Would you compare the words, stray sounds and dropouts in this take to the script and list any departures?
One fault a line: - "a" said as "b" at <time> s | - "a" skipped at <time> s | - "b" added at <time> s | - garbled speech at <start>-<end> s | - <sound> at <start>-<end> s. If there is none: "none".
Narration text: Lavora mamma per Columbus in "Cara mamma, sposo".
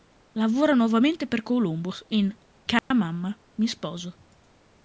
- "mamma" said as "nuovamente" at 0.7 s
- dropout at 2.8-2.9 s
- "mi" added at 3.6 s